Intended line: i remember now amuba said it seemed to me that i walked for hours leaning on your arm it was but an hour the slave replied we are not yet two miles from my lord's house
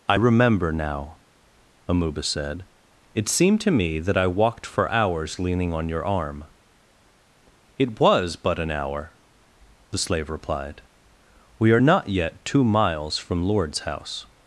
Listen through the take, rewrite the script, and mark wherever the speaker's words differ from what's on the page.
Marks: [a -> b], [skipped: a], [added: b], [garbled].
i remember now amuba said it seemed to me that i walked for hours leaning on your arm it was but an hour the slave replied we are not yet two miles from [skipped: my] lord's house